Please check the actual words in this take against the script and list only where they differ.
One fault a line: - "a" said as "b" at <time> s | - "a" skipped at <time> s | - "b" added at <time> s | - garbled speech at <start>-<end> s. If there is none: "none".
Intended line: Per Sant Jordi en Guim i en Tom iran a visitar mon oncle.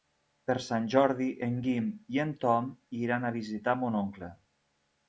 none